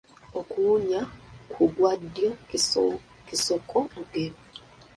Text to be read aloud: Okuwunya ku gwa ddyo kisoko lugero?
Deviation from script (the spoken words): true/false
false